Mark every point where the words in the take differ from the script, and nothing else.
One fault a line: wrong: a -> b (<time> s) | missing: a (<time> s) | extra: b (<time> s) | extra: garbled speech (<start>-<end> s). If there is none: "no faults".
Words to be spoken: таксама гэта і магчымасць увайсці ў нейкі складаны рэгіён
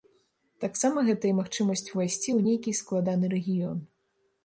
no faults